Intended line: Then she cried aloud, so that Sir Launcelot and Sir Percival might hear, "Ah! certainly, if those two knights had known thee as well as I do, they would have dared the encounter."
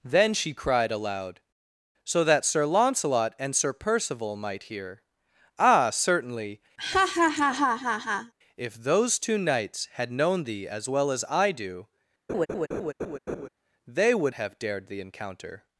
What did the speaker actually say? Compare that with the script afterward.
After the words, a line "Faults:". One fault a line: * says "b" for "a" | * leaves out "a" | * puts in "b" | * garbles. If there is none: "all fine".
Then she cried aloud, so that Sir Launcelot and Sir Percival might hear, "Ah! certainly, if those two knights had known thee as well as I do, they would have dared the encounter."
Faults:
all fine